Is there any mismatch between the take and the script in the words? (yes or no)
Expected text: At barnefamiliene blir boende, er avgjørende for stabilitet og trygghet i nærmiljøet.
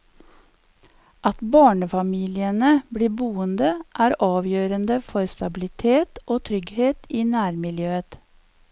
no